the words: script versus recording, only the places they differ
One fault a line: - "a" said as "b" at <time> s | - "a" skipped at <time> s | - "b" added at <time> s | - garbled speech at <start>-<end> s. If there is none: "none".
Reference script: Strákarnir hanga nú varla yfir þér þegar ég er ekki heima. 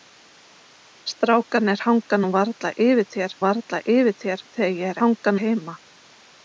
- "varla yfir þér" added at 3.4 s
- "ekki" said as "hanga" at 5.0 s